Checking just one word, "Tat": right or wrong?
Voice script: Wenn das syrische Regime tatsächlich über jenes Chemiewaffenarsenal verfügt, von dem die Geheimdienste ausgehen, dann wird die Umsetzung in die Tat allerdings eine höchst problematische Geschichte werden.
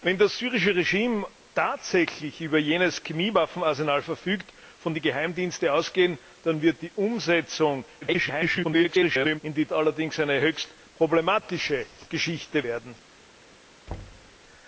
wrong